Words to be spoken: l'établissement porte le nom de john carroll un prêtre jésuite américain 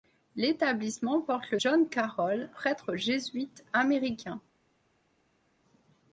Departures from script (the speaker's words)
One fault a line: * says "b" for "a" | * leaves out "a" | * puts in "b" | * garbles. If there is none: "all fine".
* leaves out "nom de"
* leaves out "un"